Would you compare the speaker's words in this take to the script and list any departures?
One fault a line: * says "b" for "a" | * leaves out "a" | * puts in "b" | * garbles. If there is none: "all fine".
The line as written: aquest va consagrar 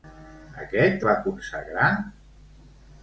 all fine